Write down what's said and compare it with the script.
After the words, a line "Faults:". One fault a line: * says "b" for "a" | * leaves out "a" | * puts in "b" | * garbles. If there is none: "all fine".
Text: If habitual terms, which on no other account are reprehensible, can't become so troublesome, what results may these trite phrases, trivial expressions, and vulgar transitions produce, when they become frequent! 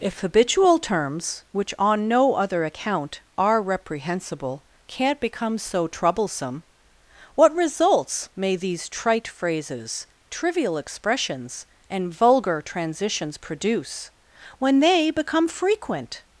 If habitual terms, which on no other account are reprehensible, can't become so troublesome, what results may these trite phrases, trivial expressions, and vulgar transitions produce, when they become frequent!
Faults:
all fine